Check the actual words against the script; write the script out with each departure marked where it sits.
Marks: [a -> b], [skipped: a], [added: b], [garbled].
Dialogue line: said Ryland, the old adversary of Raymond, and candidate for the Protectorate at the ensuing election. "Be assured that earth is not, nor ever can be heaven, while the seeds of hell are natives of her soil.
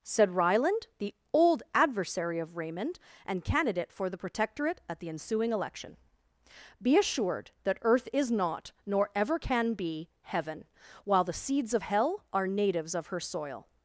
said Ryland, the old adversary of Raymond, and candidate for the Protectorate at the ensuing election. "Be assured that earth is not, nor ever can be heaven, while the seeds of hell are natives of her soil.